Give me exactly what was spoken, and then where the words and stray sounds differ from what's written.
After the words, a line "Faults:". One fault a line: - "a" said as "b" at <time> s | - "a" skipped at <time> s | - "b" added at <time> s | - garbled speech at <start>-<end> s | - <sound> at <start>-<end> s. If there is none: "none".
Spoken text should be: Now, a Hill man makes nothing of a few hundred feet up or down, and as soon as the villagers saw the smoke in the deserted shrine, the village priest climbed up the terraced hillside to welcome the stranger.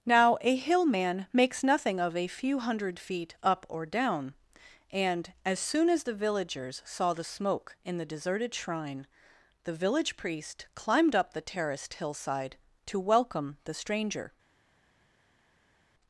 Now, a Hill man makes nothing of a few hundred feet up or down, and as soon as the villagers saw the smoke in the deserted shrine, the village priest climbed up the terraced hillside to welcome the stranger.
Faults:
none